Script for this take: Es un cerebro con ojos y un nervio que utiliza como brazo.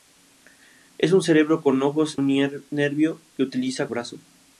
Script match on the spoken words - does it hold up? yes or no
no